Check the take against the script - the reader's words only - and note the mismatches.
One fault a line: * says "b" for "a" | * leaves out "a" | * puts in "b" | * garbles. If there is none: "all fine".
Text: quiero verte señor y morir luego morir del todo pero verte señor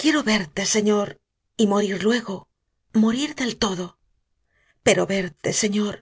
all fine